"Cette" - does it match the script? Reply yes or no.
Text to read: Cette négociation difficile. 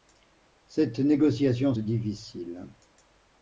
yes